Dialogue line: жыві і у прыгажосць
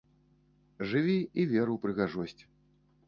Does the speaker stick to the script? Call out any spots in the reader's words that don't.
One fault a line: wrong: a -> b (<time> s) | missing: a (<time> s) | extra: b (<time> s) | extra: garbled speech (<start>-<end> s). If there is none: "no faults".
extra: вер (1.5 s)